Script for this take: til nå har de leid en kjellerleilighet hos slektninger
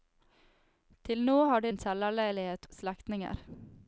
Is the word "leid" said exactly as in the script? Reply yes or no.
no